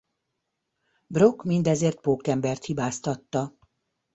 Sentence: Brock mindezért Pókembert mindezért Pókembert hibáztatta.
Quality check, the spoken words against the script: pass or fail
fail